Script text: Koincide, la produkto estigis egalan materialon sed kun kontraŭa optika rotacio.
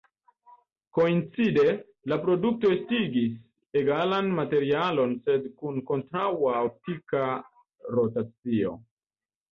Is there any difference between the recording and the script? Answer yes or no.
no